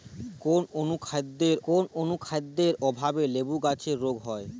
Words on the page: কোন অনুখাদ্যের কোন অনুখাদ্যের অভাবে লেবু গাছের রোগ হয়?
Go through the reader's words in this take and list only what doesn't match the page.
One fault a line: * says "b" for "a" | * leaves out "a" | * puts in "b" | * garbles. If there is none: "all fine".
all fine